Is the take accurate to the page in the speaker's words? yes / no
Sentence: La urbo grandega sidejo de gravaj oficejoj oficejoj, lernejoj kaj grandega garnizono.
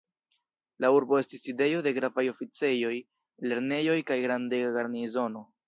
no